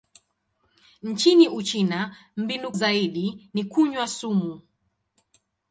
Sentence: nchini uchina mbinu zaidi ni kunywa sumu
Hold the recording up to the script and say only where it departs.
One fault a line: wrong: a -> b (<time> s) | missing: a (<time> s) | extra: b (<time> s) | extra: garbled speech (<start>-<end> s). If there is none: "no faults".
no faults